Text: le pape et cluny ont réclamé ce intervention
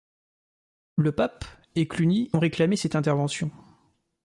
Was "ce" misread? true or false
true